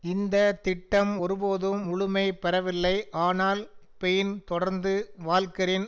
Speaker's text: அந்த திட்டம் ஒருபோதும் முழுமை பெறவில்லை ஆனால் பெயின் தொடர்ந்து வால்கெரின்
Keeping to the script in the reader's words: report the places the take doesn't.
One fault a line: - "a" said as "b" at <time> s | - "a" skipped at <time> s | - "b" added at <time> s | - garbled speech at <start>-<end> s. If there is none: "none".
- "அந்த" said as "இந்த" at 0.0 s